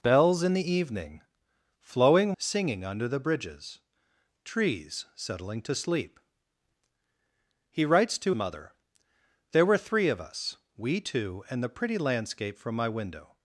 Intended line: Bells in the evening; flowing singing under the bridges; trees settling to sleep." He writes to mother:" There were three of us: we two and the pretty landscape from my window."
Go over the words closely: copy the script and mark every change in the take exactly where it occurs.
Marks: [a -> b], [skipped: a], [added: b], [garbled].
Bells in the evening; flowing singing under the bridges; trees settling to sleep." He writes to mother:" There were three of us: we two and the pretty landscape from my window."